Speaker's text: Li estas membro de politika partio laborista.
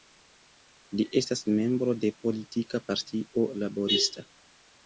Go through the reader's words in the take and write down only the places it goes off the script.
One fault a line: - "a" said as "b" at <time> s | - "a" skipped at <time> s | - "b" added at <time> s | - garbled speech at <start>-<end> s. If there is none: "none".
none